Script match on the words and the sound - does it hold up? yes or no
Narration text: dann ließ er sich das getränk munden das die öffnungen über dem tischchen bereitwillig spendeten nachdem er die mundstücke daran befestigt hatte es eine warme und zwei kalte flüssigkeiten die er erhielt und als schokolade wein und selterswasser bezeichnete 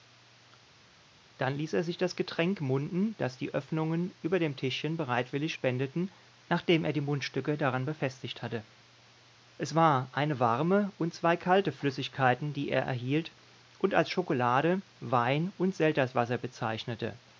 no